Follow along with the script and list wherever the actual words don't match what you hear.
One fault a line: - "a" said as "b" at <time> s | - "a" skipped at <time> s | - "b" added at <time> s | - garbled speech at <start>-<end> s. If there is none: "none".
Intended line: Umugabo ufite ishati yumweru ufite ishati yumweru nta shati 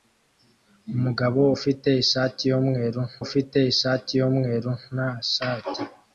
none